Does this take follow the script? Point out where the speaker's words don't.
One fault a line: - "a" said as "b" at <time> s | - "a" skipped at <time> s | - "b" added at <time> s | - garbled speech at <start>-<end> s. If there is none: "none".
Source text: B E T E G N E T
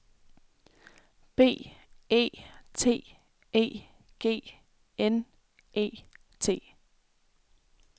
none